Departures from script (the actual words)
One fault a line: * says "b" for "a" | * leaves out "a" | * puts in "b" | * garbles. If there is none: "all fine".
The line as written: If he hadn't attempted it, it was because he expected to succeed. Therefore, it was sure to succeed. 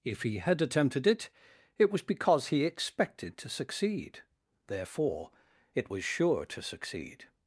* says "had" for "hadn't"